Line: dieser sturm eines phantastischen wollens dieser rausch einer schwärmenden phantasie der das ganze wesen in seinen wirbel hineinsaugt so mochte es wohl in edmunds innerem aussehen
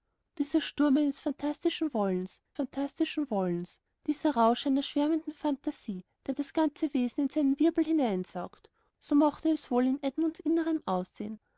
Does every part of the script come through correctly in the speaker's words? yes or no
no